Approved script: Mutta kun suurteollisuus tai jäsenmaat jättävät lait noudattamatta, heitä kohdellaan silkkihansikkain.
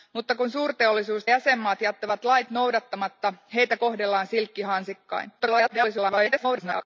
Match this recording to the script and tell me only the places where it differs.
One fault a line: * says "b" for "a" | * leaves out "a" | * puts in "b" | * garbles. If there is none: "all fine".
* leaves out "tai"
* garbles